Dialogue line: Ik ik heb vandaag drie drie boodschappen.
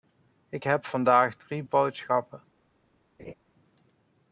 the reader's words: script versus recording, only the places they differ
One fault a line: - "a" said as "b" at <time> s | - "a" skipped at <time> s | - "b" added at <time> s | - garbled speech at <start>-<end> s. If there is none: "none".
- "ik" skipped at 0.7 s
- "drie" skipped at 1.6 s